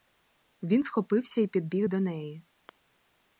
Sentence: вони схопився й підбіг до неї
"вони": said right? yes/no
no